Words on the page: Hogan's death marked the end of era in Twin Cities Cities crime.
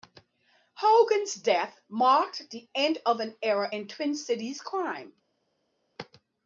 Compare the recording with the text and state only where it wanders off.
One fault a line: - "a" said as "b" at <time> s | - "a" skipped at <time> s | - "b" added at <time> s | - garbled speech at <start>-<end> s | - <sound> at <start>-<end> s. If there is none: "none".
- "an" added at 3.2 s
- "Cities" skipped at 4.6 s